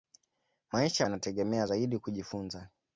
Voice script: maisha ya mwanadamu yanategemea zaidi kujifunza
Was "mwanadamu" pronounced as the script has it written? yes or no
no